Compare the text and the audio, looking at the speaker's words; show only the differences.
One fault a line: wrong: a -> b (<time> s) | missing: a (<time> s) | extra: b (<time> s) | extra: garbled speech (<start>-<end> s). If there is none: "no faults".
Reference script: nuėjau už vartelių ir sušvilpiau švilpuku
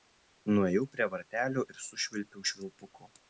wrong: už -> prie (0.9 s)